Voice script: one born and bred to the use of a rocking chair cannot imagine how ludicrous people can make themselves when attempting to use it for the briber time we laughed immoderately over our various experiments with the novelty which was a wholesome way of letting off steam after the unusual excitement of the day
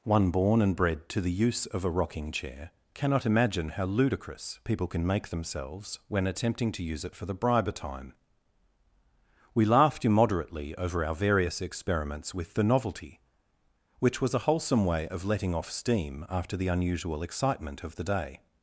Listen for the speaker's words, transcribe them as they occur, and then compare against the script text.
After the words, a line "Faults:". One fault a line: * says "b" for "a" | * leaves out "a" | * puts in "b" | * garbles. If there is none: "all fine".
one born and bred to the use of a rocking chair cannot imagine how ludicrous people can make themselves when attempting to use it for the briber time we laughed immoderately over our various experiments with the novelty which was a wholesome way of letting off steam after the unusual excitement of the day
Faults:
all fine